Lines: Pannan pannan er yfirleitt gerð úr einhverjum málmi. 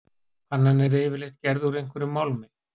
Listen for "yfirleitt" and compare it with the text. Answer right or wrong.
right